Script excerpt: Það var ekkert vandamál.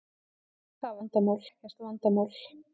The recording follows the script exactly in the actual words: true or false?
false